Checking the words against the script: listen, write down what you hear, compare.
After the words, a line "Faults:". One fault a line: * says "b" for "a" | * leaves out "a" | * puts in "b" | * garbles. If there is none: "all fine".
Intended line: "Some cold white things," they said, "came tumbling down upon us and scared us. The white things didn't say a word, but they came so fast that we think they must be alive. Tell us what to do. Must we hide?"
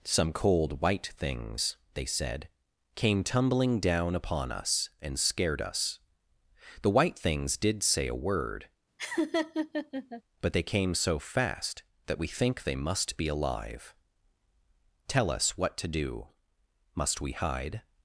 "Some cold white things," they said, "came tumbling down upon us and scared us. The white things did say a word, but they came so fast that we think they must be alive. Tell us what to do. Must we hide?"
Faults:
* says "did" for "didn't"